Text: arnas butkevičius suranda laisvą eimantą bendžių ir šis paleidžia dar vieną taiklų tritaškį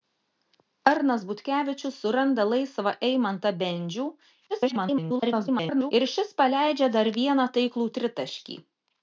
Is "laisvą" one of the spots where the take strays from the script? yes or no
no